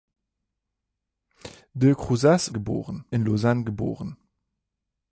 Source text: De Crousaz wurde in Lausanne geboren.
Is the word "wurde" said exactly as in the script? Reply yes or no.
no